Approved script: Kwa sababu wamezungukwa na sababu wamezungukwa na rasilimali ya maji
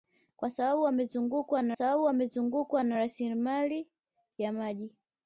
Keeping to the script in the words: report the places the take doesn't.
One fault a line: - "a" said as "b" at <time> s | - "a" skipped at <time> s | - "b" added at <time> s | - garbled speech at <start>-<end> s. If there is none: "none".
none